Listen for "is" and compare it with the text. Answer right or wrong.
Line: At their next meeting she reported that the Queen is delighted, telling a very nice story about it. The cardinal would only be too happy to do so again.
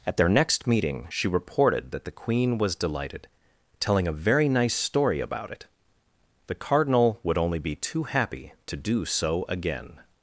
wrong